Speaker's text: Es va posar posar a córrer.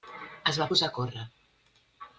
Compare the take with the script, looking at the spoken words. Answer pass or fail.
fail